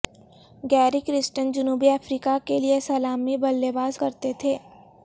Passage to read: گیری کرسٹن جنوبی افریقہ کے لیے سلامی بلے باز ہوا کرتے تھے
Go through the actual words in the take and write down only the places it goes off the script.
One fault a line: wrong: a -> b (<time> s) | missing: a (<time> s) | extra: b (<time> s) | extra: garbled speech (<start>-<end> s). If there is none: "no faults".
missing: ہوا (4.0 s)